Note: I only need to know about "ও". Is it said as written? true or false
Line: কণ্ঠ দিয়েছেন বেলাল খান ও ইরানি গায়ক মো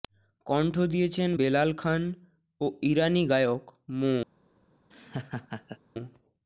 true